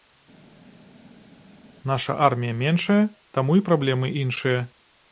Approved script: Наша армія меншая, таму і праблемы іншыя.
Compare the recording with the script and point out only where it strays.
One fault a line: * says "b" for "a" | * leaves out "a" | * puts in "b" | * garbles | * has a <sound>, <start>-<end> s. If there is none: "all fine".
all fine